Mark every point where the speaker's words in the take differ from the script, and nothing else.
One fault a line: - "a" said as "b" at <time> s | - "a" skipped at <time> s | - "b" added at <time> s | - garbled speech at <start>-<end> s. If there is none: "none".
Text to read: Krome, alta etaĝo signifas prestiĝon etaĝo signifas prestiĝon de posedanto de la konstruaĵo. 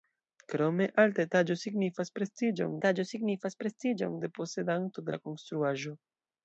none